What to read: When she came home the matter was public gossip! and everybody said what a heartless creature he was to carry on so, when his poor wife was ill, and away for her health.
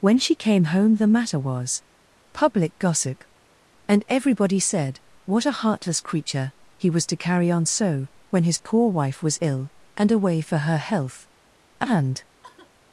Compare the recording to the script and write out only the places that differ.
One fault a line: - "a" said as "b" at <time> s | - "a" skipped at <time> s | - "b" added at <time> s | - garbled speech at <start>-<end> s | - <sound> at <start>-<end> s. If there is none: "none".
- "And" added at 11.8 s
- sigh at 12.4-12.7 s